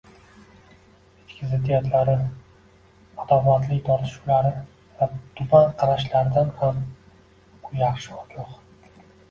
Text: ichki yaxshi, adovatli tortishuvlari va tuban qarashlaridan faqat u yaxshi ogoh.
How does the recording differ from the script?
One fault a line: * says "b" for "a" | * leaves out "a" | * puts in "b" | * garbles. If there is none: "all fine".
* says "ziddiyatlari" for "yaxshi"
* says "ham" for "faqat"